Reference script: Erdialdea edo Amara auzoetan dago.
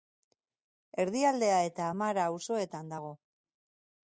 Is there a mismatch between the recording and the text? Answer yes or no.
yes